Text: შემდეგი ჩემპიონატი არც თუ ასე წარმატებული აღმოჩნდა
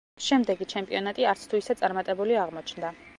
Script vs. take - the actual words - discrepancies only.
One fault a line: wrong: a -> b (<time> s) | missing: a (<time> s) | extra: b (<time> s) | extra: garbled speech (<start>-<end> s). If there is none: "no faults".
wrong: ასე -> ისე (1.6 s)